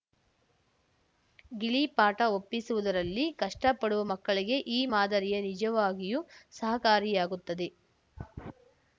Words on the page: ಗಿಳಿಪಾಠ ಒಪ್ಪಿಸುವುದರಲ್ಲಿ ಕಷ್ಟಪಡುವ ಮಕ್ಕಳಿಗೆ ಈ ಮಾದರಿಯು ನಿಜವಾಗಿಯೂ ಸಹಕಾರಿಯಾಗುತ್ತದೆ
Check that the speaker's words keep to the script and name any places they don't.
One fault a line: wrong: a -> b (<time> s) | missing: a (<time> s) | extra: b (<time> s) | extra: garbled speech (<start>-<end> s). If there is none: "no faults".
no faults